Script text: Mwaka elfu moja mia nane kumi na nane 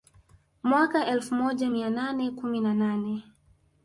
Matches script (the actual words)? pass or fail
pass